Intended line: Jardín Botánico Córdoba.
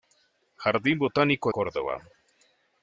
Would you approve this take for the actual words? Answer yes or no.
yes